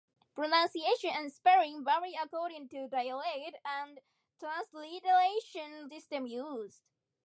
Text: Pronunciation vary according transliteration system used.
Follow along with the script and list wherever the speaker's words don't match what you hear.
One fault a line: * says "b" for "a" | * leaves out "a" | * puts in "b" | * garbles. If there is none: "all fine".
* puts in "and spelling"
* puts in "to dialect and"